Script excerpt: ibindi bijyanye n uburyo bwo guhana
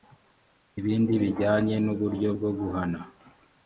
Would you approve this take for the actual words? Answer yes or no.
yes